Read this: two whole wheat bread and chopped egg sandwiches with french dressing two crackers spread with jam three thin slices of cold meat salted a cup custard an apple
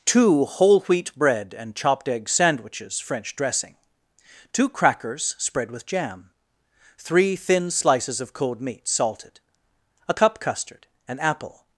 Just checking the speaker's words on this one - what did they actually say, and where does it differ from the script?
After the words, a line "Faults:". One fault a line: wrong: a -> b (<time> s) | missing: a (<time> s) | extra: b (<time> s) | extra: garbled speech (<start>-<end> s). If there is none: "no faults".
two whole wheat bread and chopped egg sandwiches french dressing two crackers spread with jam three thin slices of cold meat salted a cup custard an apple
Faults:
missing: with (3.0 s)